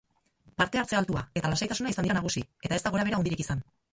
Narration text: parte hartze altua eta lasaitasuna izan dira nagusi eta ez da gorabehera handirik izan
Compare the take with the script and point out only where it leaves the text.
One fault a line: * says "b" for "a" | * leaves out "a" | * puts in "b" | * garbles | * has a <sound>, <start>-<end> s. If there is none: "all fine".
all fine